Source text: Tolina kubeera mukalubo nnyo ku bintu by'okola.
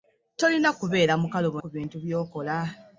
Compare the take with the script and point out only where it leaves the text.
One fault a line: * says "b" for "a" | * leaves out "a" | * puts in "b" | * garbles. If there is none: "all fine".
* leaves out "nnyo"